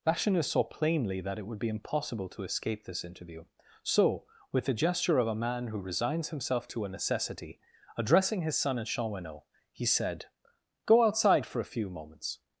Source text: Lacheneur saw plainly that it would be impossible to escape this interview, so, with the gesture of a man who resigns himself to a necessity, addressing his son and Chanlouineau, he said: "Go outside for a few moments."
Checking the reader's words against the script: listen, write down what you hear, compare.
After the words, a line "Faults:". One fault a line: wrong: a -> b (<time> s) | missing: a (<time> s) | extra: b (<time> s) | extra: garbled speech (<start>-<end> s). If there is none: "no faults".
Lacheneur saw plainly that it would be impossible to escape this interview, so, with the gesture of a man who resigns himself to a necessity, addressing his son and Chanlouineau, he said: "Go outside for a few moments."
Faults:
no faults